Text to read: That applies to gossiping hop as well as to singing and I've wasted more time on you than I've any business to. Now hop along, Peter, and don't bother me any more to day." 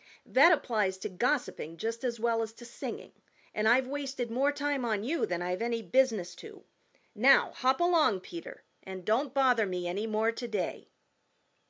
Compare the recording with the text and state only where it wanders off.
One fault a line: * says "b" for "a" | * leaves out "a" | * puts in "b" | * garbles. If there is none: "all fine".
* says "just" for "hop"